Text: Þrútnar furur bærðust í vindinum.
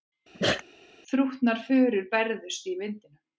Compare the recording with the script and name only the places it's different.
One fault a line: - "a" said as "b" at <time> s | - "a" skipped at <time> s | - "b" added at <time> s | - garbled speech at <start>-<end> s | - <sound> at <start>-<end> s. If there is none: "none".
- sneeze at 0.3-0.6 s